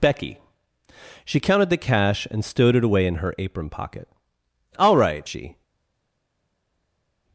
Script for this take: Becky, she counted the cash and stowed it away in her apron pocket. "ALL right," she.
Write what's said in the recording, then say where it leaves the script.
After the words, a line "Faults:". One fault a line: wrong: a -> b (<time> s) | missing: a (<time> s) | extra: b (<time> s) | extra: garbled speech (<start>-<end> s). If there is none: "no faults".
Becky, she counted the cash and stowed it away in her apron pocket. "ALL right," she.
Faults:
no faults